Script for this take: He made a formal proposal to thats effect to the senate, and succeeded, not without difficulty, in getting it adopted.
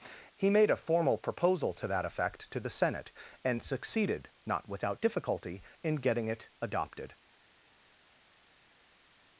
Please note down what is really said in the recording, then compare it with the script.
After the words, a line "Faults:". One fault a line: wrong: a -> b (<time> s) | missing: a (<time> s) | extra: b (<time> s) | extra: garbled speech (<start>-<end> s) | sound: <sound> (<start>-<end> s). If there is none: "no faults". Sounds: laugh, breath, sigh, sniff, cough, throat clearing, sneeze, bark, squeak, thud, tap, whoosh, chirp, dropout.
He made a formal proposal to that effect to the senate, and succeeded, not without difficulty, in getting it adopted.
Faults:
wrong: thats -> that (1.9 s)